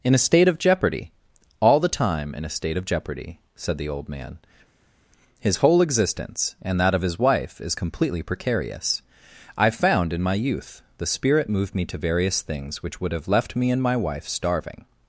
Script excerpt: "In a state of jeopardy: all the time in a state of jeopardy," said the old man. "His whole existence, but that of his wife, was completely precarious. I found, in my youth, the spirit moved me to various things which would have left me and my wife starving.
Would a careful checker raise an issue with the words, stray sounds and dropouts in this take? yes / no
yes